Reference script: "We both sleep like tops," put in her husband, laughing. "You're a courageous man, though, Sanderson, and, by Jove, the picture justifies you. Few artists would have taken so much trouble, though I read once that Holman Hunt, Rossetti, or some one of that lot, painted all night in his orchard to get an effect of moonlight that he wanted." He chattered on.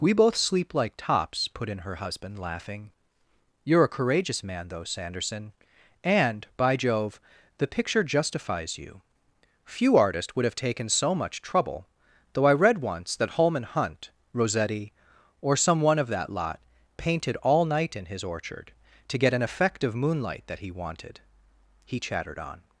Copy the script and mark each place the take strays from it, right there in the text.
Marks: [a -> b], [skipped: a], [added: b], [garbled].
"We both sleep like tops," put in her husband, laughing. "You're a courageous man, though, Sanderson, and, by Jove, the picture justifies you. Few artists would have taken so much trouble, though I read once that Holman Hunt, Rossetti, or some one of that lot, painted all night in his orchard to get an effect of moonlight that he wanted." He chattered on.